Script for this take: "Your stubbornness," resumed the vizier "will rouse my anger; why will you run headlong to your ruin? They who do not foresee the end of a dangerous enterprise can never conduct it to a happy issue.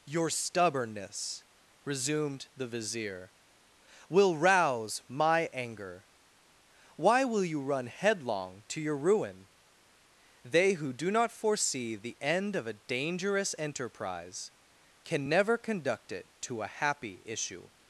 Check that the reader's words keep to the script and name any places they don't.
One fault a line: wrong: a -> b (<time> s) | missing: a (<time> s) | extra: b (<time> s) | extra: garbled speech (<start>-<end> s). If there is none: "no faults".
no faults